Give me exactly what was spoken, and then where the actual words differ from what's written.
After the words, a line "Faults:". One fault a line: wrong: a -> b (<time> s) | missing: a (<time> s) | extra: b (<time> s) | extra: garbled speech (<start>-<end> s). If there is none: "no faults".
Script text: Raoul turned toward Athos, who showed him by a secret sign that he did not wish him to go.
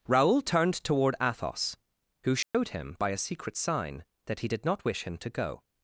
Raoul turned toward Athos, who showed him by a secret sign that he did not wish him to go.
Faults:
no faults